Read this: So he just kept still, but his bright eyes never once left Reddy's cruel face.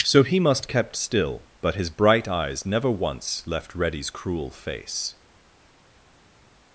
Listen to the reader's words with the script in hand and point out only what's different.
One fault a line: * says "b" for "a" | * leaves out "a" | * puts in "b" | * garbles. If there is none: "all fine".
* says "must" for "just"